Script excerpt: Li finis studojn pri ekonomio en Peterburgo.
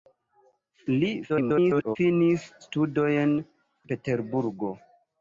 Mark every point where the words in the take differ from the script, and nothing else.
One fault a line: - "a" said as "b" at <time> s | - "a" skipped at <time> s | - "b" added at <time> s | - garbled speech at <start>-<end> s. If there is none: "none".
- garbled speech at 1.3-2.0 s
- "pri ekonomio en" skipped at 3.4 s